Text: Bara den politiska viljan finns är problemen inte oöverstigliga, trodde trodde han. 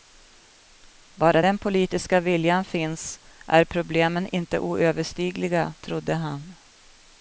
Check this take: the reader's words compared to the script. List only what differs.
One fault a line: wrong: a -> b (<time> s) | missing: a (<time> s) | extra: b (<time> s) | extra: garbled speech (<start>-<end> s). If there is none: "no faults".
missing: trodde (6.1 s)